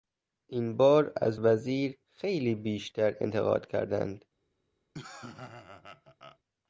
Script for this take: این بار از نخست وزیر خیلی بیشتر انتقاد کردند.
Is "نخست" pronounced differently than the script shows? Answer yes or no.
yes